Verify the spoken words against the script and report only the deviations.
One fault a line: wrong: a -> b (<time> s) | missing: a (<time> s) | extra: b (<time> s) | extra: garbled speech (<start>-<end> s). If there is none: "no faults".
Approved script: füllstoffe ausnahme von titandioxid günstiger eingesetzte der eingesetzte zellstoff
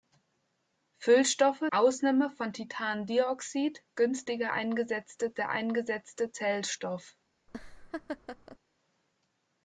no faults